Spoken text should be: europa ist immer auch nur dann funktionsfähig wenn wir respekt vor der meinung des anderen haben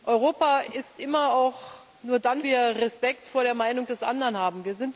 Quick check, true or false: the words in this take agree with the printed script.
false